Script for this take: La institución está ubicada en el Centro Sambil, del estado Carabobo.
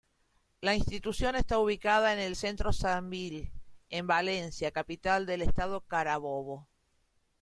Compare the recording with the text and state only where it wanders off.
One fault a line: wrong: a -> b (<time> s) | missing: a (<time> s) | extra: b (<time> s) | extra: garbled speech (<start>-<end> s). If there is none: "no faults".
extra: en Valencia capital (3.9 s)